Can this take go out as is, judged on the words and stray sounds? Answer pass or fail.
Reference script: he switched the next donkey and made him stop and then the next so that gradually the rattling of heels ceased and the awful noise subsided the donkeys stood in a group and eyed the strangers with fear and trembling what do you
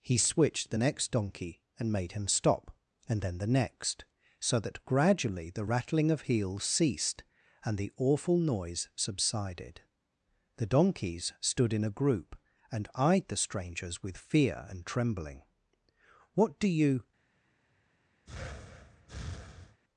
fail